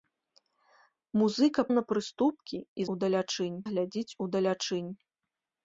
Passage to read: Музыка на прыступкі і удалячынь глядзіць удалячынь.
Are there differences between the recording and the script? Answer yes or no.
no